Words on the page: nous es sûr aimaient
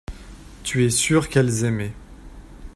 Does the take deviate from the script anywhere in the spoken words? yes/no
yes